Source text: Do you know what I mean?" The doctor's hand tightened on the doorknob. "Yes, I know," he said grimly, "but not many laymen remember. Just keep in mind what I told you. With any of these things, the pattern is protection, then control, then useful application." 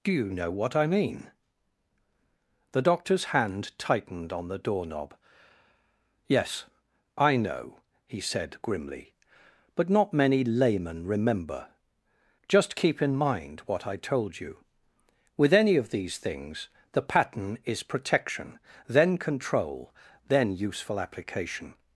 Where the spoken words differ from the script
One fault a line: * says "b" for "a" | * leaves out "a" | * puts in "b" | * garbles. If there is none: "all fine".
all fine